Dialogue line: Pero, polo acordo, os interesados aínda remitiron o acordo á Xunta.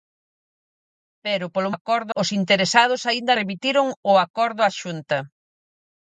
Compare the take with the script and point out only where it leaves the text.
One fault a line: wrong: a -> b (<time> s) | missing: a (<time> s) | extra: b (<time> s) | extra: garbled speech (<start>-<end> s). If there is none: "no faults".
no faults